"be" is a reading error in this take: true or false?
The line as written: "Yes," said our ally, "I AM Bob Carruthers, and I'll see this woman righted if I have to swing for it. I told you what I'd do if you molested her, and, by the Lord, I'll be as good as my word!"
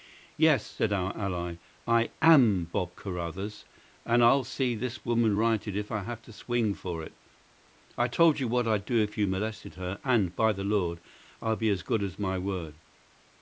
false